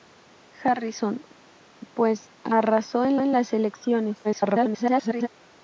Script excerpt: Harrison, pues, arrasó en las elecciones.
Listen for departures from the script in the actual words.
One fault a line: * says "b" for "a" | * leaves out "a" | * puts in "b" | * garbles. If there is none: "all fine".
* puts in "en"
* garbles